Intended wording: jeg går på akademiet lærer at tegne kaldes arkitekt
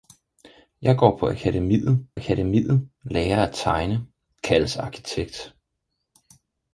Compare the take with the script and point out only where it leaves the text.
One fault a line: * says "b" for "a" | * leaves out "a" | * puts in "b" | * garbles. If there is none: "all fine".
* puts in "akademiet"